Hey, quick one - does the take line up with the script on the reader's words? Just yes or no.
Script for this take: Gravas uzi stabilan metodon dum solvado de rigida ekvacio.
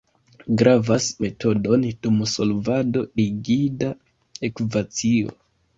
no